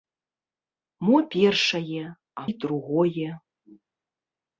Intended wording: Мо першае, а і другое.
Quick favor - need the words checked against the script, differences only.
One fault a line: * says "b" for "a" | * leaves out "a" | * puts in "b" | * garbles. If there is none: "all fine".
all fine